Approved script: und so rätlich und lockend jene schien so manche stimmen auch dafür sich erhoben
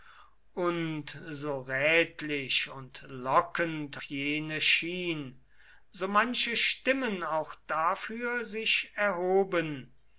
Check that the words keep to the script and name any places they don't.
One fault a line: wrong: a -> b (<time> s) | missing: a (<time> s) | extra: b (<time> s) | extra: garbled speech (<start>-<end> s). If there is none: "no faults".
no faults